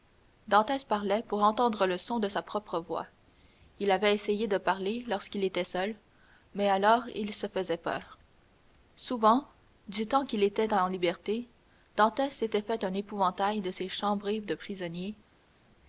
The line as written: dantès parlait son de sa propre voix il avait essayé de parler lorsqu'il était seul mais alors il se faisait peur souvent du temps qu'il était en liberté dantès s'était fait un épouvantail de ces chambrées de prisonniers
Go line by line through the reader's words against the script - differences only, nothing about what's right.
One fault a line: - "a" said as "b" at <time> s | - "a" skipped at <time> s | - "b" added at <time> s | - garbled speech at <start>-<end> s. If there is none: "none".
- "pour entendre le" added at 1.2 s